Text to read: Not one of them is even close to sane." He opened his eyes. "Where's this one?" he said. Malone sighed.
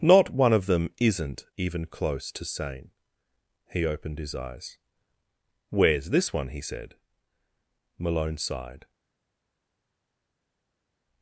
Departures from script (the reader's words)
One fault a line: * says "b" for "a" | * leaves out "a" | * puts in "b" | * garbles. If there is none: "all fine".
* says "isn't" for "is"